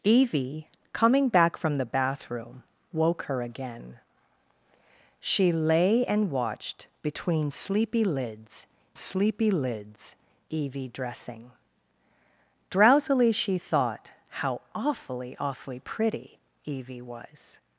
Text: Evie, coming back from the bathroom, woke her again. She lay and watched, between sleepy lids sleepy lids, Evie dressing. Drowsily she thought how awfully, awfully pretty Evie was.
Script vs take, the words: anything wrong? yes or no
no